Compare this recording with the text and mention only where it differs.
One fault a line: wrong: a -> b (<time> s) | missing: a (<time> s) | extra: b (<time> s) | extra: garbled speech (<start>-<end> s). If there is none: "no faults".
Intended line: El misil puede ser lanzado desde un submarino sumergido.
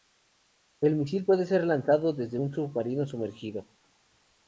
no faults